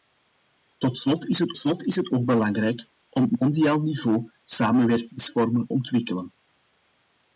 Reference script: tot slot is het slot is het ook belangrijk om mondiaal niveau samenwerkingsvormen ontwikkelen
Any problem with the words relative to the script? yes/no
no